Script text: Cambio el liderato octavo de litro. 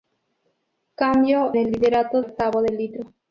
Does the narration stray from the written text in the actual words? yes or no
no